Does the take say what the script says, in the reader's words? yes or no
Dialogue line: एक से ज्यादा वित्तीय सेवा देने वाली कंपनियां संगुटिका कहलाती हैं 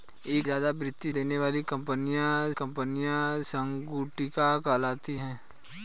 no